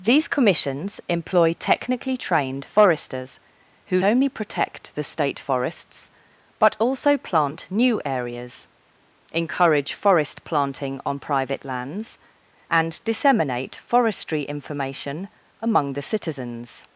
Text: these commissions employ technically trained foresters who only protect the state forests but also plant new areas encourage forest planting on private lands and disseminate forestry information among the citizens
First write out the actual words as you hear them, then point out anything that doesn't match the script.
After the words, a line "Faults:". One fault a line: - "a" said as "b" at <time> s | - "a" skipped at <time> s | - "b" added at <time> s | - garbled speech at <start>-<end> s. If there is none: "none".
these commissions employ technically trained foresters who only protect the state forests but also plant new areas encourage forest planting on private lands and disseminate forestry information among the citizens
Faults:
none